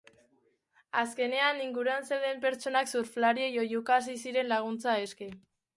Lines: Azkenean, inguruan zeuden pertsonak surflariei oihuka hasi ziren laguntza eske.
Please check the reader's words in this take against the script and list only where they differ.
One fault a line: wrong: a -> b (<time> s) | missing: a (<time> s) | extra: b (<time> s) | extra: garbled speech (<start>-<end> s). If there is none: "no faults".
no faults